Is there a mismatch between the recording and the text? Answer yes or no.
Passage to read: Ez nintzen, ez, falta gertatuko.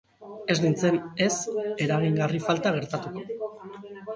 yes